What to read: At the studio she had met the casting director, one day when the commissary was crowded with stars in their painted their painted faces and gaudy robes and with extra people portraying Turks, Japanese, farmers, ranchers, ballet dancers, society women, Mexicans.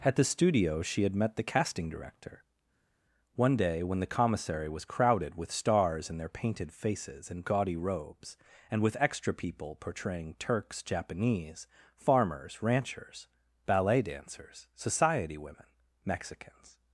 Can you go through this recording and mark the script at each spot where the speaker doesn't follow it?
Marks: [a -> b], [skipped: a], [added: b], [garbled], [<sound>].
At the studio she had met the casting director, one day when the commissary was crowded with stars in their painted [skipped: their painted] faces and gaudy robes and with extra people portraying Turks, Japanese, farmers, ranchers, ballet dancers, society women, Mexicans.